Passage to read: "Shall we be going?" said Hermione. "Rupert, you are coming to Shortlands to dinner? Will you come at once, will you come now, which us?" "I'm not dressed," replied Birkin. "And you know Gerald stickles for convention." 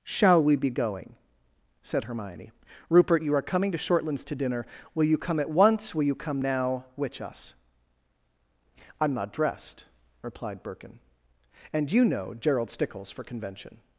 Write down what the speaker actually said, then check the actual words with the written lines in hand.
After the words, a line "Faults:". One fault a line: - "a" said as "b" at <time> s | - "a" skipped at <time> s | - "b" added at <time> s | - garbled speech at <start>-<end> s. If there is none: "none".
"Shall we be going?" said Hermione. "Rupert, you are coming to Shortlands to dinner? Will you come at once, will you come now, which us?" "I'm not dressed," replied Birkin. "And you know Gerald stickles for convention."
Faults:
none